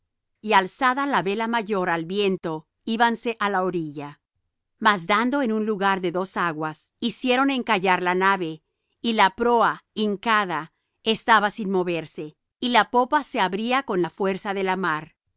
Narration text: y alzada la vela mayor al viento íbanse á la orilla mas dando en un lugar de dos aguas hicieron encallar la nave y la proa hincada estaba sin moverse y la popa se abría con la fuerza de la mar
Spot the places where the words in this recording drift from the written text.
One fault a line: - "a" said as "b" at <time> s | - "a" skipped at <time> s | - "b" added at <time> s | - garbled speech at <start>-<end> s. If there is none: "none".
none